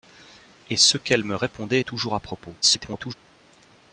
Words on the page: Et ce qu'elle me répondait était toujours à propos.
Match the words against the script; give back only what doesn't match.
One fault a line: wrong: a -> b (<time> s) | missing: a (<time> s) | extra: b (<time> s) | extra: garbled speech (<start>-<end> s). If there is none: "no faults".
missing: était (1.8 s)
extra: garbled speech (2.6-3.1 s)